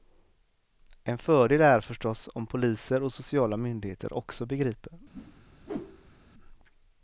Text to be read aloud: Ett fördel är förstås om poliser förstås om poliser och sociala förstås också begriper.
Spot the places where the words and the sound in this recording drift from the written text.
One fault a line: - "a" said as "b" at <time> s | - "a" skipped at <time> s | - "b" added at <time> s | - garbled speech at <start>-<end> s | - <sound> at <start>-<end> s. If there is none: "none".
- "Ett" said as "En" at 1.0 s
- "förstås om poliser" skipped at 3.0 s
- "förstås" said as "myndigheter" at 3.6 s
- whoosh at 5.1-6.2 s